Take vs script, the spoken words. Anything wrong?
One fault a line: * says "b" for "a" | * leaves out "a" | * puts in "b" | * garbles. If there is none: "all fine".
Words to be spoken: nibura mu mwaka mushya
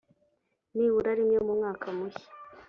* puts in "rimwe"